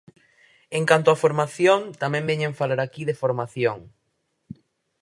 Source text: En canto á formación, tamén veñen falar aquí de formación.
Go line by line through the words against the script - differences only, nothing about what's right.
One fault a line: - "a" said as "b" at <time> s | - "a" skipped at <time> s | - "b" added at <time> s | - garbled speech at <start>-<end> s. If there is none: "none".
none